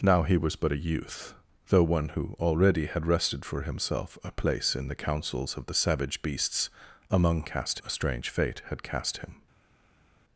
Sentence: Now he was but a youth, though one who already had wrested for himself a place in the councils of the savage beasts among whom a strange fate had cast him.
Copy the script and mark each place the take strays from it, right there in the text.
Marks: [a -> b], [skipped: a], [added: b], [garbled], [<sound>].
Now he was but a youth, though one who already had wrested for himself a place in the councils of the savage beasts among [whom -> cast] a strange fate had cast him.